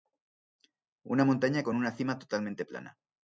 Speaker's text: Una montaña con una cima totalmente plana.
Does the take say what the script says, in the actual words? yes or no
yes